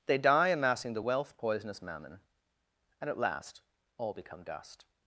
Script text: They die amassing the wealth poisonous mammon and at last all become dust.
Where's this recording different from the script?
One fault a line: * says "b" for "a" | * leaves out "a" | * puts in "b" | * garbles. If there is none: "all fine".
all fine